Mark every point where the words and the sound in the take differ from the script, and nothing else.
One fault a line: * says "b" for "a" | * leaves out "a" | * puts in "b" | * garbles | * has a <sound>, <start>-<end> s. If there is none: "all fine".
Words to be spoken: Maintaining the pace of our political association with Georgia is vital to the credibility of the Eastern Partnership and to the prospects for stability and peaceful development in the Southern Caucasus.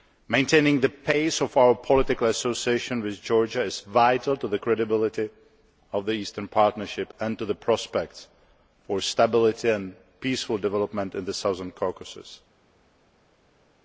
all fine